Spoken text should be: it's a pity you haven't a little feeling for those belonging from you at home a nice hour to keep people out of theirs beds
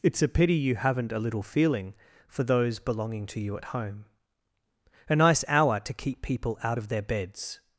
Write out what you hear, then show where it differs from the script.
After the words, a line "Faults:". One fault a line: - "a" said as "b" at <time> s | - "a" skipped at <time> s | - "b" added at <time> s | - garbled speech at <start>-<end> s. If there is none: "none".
it's a pity you haven't a little feeling for those belonging to you at home a nice hour to keep people out of their beds
Faults:
- "from" said as "to" at 3.3 s
- "theirs" said as "their" at 6.9 s